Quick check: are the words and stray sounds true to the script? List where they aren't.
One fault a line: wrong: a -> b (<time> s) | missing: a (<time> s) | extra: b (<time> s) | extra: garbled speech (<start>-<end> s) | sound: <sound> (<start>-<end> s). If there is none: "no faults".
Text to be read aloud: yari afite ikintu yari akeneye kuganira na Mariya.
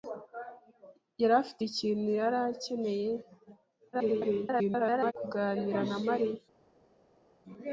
extra: garbled speech (3.9-5.1 s)